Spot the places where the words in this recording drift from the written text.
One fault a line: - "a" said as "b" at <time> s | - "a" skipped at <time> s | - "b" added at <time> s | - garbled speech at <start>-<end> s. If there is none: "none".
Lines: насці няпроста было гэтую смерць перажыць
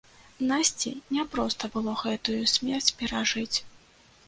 none